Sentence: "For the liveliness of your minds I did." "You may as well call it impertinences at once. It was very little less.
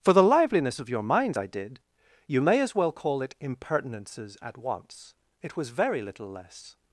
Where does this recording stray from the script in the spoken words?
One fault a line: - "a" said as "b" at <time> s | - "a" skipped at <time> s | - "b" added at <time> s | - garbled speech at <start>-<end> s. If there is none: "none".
none